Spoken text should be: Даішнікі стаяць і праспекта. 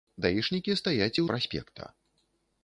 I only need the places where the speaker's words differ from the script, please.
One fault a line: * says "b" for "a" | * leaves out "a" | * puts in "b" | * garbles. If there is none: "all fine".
all fine